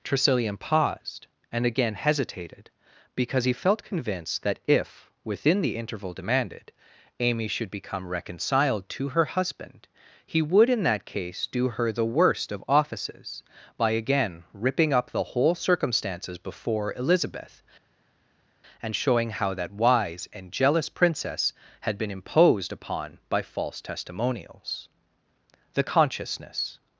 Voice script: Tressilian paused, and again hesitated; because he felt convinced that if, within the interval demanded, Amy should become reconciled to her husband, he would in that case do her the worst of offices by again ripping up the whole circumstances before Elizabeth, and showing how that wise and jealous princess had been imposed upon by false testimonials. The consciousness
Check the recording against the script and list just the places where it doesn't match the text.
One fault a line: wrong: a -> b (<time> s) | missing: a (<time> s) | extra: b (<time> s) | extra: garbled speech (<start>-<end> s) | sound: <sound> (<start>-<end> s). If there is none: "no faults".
no faults